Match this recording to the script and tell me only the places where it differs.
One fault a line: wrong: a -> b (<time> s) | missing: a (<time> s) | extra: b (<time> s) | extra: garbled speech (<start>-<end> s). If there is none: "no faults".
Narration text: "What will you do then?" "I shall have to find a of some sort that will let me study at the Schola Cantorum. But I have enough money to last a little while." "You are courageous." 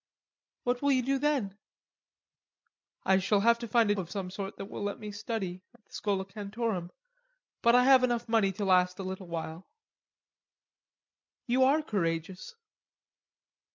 no faults